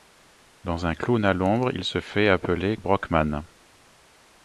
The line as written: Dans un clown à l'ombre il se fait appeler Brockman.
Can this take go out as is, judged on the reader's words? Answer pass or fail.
pass